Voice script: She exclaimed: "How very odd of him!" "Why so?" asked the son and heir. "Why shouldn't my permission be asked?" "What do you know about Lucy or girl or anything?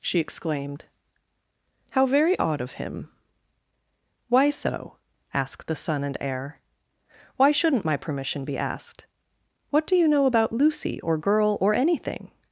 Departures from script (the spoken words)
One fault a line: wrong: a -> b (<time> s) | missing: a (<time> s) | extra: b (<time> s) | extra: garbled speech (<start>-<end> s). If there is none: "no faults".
no faults